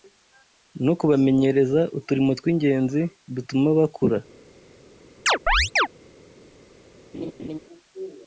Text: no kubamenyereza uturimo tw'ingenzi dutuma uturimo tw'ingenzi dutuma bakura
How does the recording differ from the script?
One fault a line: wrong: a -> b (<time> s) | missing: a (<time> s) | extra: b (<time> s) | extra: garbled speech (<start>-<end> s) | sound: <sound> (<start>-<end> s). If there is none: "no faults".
missing: uturimo tw'ingenzi dutuma (3.7 s)
sound: chirp (5.3-5.9 s)
sound: laugh (7.1-7.6 s)